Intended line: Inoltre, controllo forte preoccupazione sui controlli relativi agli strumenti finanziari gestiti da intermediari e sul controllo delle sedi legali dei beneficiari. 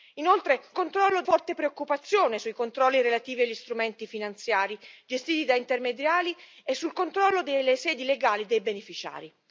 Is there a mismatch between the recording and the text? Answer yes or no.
no